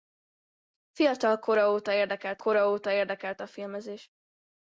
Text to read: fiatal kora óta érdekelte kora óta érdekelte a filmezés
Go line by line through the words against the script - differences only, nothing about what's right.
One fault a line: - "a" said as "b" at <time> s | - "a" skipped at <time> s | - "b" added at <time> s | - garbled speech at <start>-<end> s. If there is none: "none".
none